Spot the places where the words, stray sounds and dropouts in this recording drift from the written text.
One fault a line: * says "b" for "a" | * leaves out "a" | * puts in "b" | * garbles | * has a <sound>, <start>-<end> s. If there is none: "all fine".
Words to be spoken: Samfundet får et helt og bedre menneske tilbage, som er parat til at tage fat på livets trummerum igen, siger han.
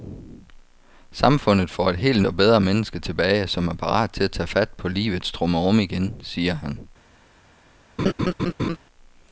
* has a laugh, 8.0-8.8 s